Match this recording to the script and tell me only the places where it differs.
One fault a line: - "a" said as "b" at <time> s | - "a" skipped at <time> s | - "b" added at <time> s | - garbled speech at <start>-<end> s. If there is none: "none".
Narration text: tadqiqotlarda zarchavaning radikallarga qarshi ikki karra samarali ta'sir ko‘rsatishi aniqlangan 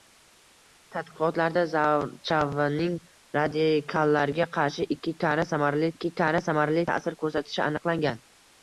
- "ikki karra samarali" added at 5.9 s